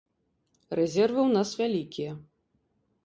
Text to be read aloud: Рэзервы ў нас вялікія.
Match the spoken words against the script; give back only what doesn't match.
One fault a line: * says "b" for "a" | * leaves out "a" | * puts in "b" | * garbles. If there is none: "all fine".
all fine